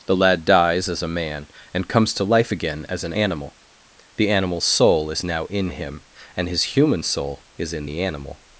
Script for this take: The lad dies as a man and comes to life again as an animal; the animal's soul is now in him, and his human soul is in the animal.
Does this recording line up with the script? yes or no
yes